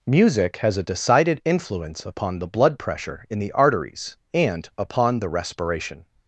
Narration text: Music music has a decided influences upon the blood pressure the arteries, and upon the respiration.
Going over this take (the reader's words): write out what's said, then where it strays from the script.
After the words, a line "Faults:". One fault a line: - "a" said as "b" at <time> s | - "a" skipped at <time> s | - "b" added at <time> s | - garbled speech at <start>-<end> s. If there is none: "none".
Music has a decided influence upon the blood pressure in the arteries, and upon the respiration.
Faults:
- "music" skipped at 0.6 s
- "influences" said as "influence" at 1.4 s
- "in" added at 3.3 s